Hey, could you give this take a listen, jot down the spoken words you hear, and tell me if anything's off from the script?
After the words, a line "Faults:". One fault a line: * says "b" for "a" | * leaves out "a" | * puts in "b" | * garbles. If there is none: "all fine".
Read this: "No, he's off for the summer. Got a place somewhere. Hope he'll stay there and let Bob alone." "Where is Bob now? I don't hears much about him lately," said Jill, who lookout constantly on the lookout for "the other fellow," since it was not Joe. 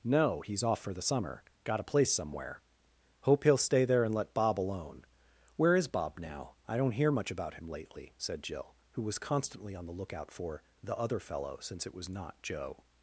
"No, he's off for the summer. Got a place somewhere. Hope he'll stay there and let Bob alone." "Where is Bob now? I don't hear much about him lately," said Jill, who was constantly on the lookout for "the other fellow," since it was not Joe.
Faults:
* says "hear" for "hears"
* says "was" for "lookout"